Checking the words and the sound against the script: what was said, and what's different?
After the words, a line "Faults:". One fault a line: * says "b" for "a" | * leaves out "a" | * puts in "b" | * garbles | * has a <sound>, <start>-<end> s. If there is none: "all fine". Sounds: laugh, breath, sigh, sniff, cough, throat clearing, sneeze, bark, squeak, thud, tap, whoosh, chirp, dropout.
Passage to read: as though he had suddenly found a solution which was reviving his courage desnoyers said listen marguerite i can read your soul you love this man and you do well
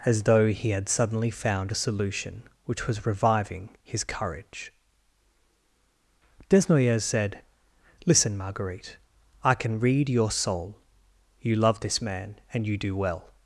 as though he had suddenly found a solution which was reviving his courage desnoyers said listen marguerite i can read your soul you love this man and you do well
Faults:
all fine